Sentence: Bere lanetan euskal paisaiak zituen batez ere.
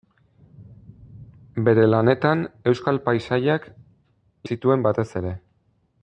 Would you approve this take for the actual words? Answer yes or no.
yes